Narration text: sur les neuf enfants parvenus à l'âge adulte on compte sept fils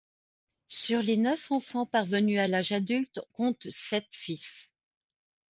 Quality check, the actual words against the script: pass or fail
fail